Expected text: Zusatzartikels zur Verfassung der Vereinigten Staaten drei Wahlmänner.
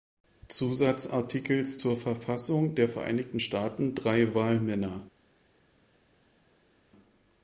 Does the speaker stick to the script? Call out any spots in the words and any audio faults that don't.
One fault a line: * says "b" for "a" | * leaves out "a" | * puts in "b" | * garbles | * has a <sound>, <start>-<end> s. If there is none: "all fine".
all fine